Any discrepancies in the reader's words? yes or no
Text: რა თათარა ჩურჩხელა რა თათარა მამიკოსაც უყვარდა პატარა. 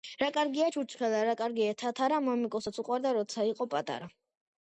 yes